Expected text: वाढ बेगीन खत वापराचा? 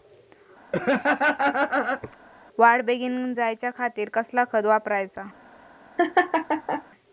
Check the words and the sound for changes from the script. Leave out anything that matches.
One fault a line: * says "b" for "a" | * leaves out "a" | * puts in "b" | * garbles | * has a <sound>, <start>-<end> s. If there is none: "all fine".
* has a laugh, 0.7-2.2 s
* puts in "जायच्या खातीर कसला"
* has a laugh, 6.0-6.8 s